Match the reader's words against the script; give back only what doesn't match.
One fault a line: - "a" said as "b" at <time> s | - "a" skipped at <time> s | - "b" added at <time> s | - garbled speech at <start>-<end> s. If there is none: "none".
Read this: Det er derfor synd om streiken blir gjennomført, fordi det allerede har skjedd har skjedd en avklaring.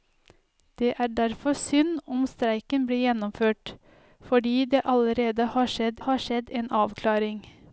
none